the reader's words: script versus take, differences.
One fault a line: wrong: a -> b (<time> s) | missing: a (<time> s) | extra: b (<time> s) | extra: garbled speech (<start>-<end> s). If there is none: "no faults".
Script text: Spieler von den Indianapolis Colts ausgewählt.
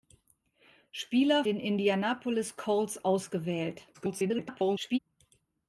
missing: von (1.4 s)
extra: garbled speech (3.9-5.0 s)